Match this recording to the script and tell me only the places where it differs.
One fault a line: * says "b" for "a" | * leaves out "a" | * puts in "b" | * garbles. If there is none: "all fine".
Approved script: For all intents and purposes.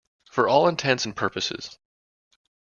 all fine